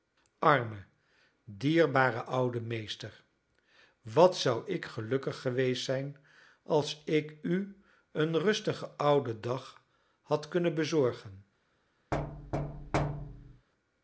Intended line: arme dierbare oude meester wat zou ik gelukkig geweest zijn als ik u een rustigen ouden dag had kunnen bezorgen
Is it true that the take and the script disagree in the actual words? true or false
false